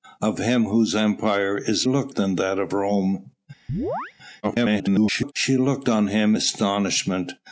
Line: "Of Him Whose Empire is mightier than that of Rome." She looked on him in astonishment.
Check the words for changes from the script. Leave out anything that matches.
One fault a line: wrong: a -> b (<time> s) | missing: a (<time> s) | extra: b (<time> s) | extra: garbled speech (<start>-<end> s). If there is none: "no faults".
wrong: mightier -> looked (1.9 s)
extra: garbled speech (4.4-5.3 s)
missing: in (6.3 s)